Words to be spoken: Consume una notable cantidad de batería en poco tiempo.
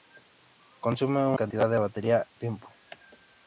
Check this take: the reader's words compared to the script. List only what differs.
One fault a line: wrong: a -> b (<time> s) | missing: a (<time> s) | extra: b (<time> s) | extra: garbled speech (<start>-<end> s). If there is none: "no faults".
missing: notable (1.4 s)
missing: en poco (2.3 s)